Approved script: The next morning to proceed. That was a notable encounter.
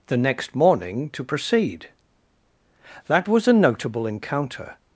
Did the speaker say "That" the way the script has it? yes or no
yes